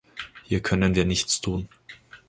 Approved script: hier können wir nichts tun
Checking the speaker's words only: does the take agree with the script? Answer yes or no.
yes